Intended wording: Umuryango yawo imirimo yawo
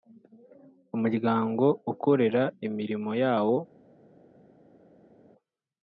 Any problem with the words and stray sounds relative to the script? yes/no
yes